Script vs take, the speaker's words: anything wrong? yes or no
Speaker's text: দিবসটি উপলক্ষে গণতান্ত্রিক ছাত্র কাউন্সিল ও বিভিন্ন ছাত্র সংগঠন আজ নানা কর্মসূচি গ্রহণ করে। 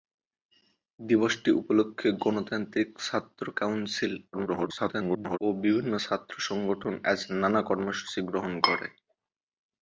yes